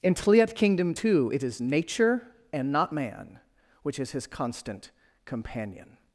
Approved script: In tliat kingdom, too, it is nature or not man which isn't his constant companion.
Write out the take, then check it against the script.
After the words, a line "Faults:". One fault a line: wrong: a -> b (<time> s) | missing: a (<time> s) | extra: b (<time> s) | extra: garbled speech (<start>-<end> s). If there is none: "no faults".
In tliat kingdom, too, it is nature and not man which is his constant companion.
Faults:
wrong: or -> and (2.5 s)
wrong: isn't -> is (4.0 s)